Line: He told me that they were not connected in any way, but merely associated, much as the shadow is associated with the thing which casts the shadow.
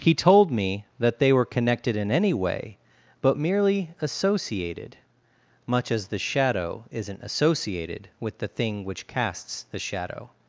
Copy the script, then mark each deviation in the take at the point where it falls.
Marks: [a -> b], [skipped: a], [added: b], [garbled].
He told me that they were [skipped: not] connected in any way, but merely associated, much as the shadow [is -> isn't] associated with the thing which casts the shadow.